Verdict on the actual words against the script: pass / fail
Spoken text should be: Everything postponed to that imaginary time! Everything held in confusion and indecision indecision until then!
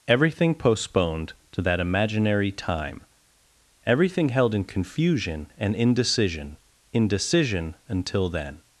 pass